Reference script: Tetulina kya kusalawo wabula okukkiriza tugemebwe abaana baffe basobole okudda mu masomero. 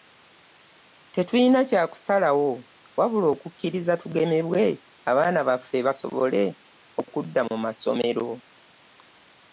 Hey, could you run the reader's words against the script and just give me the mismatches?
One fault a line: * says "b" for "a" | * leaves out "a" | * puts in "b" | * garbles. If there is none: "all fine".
all fine